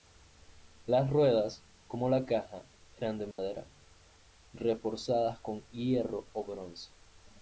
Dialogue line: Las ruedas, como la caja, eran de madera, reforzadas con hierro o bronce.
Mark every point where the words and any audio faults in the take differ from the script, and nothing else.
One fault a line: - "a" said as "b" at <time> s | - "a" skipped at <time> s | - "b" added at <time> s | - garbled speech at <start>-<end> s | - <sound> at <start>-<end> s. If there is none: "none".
- dropout at 3.3-3.4 s